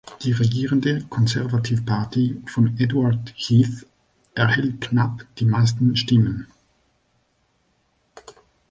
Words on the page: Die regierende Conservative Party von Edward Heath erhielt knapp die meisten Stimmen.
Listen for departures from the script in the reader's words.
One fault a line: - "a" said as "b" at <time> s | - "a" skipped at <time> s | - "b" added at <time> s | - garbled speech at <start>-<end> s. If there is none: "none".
none